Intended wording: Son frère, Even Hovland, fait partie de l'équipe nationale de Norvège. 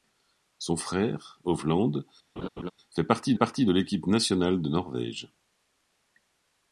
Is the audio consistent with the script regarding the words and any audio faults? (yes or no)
no